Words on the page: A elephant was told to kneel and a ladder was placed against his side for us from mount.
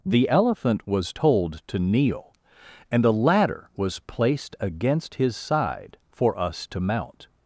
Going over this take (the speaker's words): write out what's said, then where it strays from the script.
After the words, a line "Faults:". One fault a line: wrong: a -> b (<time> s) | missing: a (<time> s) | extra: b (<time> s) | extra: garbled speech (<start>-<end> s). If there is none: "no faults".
The elephant was told to kneel and a ladder was placed against his side for us to mount.
Faults:
wrong: A -> The (0.1 s)
wrong: from -> to (6.7 s)